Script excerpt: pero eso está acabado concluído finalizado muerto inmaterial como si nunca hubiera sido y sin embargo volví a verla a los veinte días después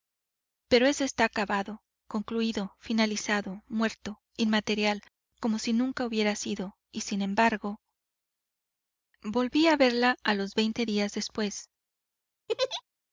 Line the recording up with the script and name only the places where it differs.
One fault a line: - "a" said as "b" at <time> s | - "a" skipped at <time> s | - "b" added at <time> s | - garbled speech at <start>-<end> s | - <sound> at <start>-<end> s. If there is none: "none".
- laugh at 12.5-12.8 s